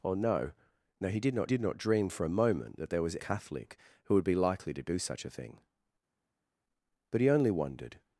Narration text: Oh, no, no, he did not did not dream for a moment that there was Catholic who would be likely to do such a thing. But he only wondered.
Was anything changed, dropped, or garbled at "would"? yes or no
no